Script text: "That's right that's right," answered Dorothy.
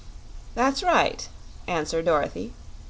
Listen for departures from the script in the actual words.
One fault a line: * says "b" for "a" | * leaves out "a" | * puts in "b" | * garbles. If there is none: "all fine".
* leaves out "that's right"